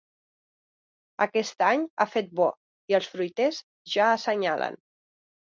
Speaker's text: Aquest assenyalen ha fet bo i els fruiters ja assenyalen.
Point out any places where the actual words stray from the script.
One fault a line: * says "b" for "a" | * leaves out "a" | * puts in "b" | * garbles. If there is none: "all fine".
* says "any" for "assenyalen"